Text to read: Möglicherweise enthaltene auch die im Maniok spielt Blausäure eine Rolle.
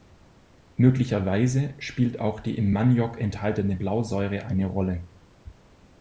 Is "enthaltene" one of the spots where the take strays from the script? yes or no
yes